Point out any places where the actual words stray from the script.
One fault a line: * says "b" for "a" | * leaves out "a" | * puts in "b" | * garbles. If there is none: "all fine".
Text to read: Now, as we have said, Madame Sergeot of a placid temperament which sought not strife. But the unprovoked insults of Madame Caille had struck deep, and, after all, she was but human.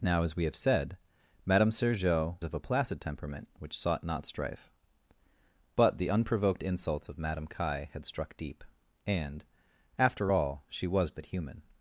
all fine